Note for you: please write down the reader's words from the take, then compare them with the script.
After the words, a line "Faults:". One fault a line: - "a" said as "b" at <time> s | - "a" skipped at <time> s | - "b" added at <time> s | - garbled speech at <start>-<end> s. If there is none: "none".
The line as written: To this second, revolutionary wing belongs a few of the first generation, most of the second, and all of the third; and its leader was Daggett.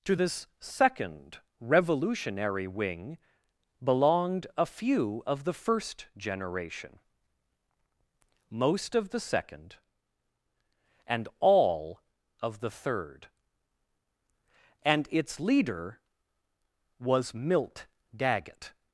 To this second, revolutionary wing belonged a few of the first generation, most of the second, and all of the third; and its leader was Milt Daggett.
Faults:
- "belongs" said as "belonged" at 3.8 s
- "Milt" added at 17.3 s